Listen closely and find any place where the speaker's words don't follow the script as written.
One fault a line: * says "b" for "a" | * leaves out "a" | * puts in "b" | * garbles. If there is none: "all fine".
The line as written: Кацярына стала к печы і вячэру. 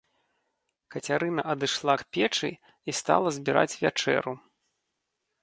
* says "адышла" for "стала"
* puts in "стала збіраць"